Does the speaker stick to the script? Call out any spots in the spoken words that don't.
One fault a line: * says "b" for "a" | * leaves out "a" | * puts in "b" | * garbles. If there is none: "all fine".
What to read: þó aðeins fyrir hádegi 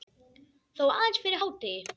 all fine